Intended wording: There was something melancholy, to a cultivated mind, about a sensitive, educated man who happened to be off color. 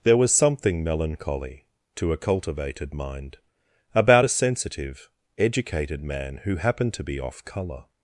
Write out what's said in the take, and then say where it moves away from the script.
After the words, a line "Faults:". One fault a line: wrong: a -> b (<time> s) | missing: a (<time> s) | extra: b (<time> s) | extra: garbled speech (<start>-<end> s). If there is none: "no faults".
There was something melancholy, to a cultivated mind, about a sensitive, educated man who happened to be off color.
Faults:
no faults